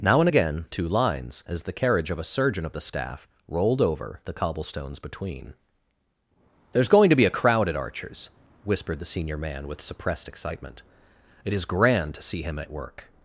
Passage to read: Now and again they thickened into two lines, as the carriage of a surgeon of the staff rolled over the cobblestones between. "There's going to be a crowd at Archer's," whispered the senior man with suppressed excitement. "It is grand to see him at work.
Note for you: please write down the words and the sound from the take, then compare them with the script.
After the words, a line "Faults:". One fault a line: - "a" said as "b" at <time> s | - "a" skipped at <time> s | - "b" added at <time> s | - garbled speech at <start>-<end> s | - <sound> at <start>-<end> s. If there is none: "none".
Now and again two lines, as the carriage of a surgeon of the staff rolled over the cobblestones between. "There's going to be a crowd at Archer's," whispered the senior man with suppressed excitement. "It is grand to see him at work.
Faults:
- "they thickened into" skipped at 0.7 s